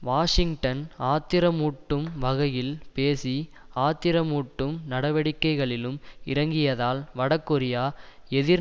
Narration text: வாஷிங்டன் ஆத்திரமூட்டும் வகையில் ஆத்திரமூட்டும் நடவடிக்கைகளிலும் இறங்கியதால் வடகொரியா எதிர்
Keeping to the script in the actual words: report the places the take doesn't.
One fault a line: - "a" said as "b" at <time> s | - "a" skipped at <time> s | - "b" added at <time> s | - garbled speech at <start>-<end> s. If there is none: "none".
- "பேசி" added at 2.9 s